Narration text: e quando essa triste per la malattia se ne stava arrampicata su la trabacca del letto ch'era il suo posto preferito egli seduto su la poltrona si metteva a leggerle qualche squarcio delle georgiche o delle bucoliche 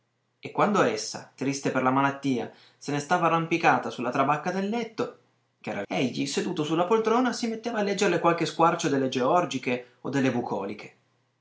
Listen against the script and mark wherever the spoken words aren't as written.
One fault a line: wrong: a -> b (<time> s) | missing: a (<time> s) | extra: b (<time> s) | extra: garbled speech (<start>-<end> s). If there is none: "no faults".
missing: suo posto preferito (5.9 s)